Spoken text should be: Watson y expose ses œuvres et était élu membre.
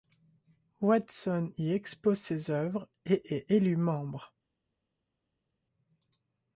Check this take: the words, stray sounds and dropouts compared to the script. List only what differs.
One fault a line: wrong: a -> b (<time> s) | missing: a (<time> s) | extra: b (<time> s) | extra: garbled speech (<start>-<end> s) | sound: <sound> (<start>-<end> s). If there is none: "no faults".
wrong: était -> est (3.4 s)